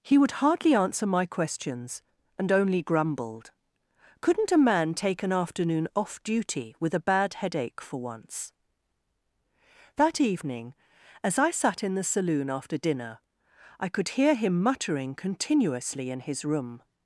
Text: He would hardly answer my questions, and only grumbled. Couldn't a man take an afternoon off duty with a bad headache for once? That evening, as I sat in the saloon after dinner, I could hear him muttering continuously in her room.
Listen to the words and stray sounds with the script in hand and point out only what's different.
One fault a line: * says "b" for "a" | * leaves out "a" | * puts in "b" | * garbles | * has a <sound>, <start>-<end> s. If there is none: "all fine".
* says "his" for "her"